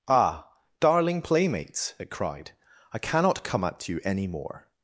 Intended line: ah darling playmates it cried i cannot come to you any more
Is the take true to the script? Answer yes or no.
no